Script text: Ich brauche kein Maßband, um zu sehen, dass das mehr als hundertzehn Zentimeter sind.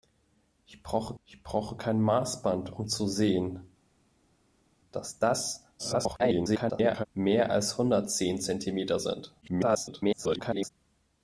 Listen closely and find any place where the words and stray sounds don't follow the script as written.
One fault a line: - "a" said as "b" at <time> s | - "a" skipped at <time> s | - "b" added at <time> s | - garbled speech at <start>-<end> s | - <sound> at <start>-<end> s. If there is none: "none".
- "ich brauche" added at 1.2 s
- garbled speech at 5.8-7.1 s
- garbled speech at 9.4-10.7 s